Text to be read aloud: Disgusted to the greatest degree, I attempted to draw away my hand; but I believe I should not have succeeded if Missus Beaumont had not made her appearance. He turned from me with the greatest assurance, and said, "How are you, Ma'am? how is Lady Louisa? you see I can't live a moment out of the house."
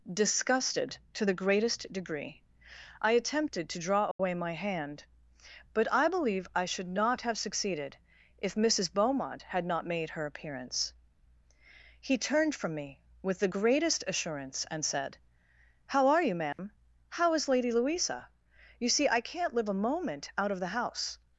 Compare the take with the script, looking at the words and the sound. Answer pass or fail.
fail